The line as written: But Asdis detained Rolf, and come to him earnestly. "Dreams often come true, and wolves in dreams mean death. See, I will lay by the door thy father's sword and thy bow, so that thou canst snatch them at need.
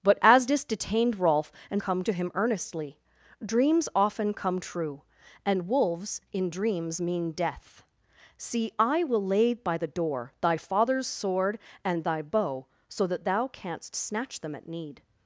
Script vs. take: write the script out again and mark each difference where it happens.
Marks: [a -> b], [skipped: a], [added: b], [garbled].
But Asdis detained Rolf, and come to him earnestly. "Dreams often come true, and wolves in dreams mean death. See, I will lay by the door thy father's sword and thy bow, so that thou canst snatch them at need.